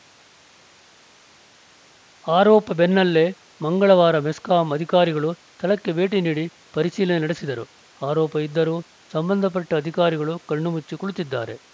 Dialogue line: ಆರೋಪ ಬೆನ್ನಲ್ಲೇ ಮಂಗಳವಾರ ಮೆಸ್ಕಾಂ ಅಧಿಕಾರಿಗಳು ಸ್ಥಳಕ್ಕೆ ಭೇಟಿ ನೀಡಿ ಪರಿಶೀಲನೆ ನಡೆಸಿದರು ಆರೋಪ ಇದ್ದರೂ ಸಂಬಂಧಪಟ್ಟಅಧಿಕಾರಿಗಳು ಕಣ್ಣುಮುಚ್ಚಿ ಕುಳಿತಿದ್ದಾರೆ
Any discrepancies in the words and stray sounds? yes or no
no